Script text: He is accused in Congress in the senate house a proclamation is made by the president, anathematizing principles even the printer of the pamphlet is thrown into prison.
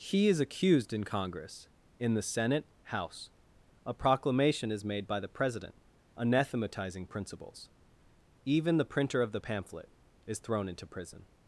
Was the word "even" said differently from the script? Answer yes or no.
no